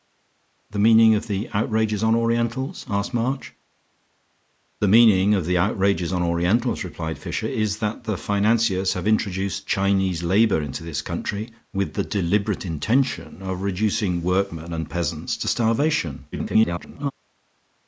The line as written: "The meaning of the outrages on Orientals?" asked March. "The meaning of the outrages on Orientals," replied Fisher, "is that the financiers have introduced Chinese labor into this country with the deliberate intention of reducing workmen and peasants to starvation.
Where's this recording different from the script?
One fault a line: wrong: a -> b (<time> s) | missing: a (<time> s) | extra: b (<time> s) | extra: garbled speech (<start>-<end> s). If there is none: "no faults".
extra: garbled speech (16.3-17.1 s)